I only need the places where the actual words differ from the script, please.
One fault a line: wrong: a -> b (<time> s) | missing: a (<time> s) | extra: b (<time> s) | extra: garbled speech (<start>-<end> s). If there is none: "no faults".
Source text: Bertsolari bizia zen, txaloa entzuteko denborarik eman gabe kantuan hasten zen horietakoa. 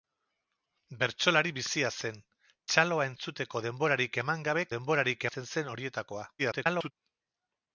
wrong: kantuan -> denborarik (4.8 s)
extra: garbled speech (6.4-6.9 s)